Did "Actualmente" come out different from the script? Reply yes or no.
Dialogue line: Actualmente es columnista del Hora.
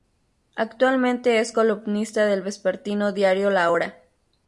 no